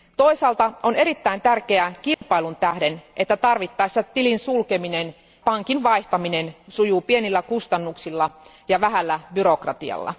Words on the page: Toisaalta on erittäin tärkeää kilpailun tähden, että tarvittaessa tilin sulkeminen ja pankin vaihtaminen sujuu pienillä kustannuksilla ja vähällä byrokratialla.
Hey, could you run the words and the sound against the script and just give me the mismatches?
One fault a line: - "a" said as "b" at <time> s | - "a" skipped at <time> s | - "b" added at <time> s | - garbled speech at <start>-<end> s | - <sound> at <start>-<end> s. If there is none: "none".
- dropout at 2.1-2.2 s
- "ja" skipped at 5.1 s